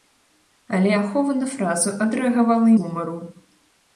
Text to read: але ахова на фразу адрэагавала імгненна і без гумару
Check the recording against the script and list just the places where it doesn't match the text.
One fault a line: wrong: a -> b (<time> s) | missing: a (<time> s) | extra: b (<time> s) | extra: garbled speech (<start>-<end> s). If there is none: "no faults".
missing: імгненна і без (2.7 s)